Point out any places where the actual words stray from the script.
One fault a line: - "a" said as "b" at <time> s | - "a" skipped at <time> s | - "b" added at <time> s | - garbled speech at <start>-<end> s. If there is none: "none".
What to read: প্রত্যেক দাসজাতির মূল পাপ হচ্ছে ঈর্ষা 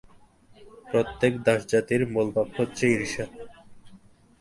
none